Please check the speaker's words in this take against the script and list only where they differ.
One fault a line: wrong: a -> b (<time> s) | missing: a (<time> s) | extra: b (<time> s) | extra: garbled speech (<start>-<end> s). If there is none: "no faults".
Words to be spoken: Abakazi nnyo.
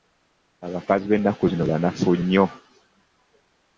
extra: b'ennaku zino banafu (1.1 s)